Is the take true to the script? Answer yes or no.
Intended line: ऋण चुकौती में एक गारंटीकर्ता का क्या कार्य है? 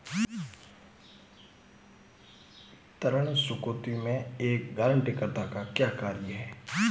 yes